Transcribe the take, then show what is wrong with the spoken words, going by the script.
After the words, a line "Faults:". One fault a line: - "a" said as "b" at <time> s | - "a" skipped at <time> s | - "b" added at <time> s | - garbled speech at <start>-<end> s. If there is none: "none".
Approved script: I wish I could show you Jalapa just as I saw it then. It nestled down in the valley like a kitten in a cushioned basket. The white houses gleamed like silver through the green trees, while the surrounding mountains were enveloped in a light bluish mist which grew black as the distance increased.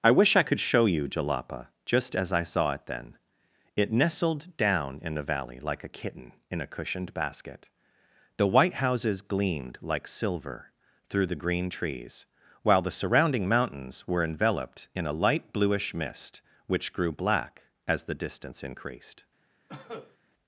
I wish I could show you Jalapa just as I saw it then. It nestled down in the valley like a kitten in a cushioned basket. The white houses gleamed like silver through the green trees, while the surrounding mountains were enveloped in a light bluish mist which grew black as the distance increased.
Faults:
none